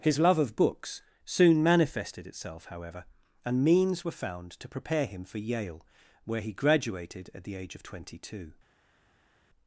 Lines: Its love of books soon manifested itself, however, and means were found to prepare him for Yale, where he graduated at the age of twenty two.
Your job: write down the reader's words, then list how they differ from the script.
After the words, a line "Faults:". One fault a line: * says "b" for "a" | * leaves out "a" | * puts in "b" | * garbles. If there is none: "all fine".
His love of books soon manifested itself, however, and means were found to prepare him for Yale, where he graduated at the age of twenty two.
Faults:
* says "His" for "Its"